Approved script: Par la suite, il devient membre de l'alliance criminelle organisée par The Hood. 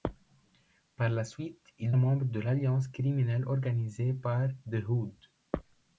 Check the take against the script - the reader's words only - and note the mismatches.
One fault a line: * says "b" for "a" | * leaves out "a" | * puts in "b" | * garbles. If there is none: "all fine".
* leaves out "devient"